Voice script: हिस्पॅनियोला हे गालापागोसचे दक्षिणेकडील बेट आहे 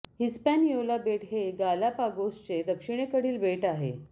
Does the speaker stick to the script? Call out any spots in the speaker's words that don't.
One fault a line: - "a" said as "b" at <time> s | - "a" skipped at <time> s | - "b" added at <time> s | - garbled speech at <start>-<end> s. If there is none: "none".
- "बेट" added at 1.0 s